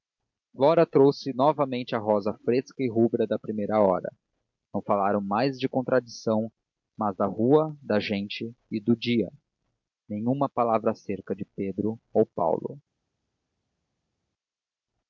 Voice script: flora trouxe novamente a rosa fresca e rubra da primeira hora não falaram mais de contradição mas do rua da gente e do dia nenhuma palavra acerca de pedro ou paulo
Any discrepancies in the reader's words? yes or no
yes